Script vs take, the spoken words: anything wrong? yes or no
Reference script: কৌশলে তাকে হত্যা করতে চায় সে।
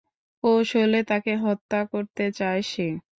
no